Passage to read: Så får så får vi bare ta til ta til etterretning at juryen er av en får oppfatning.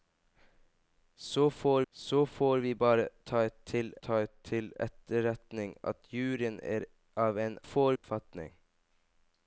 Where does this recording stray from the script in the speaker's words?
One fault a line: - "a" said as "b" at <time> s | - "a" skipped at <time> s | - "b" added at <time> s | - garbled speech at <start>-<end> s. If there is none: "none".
none